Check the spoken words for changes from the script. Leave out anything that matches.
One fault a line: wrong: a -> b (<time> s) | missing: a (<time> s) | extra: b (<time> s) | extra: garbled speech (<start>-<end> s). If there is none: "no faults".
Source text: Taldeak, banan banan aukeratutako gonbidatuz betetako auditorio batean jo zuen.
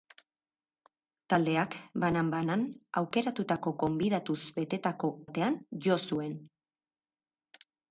missing: auditorio (5.2 s)